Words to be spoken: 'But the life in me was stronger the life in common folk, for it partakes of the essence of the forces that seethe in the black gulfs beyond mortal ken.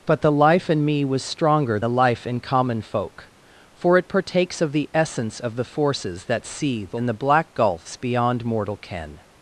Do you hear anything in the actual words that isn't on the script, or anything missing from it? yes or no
no